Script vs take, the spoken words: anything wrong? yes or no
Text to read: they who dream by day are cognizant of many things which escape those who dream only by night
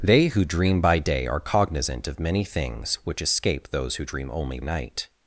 yes